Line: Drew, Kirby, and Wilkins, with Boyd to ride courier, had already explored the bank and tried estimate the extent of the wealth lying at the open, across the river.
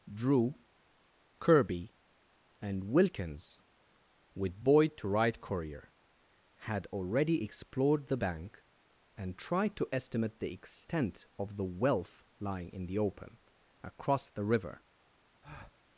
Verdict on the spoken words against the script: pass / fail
fail